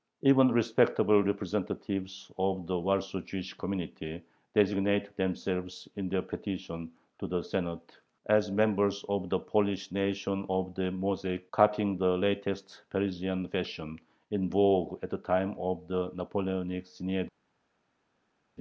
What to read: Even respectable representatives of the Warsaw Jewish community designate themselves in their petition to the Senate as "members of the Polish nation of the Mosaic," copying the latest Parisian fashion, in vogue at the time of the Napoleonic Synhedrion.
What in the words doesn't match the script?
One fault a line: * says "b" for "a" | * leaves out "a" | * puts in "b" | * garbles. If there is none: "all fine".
all fine